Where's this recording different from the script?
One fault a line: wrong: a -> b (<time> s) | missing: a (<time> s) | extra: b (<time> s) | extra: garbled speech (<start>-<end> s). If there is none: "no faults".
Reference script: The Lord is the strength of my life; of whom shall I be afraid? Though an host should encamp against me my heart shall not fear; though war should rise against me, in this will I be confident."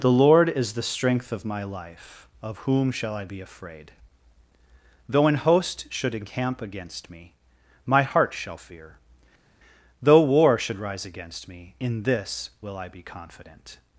missing: not (8.6 s)